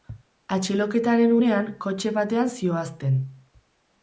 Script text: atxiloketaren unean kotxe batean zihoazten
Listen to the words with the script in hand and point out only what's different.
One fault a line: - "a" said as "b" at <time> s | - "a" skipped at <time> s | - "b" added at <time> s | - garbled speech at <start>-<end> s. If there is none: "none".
none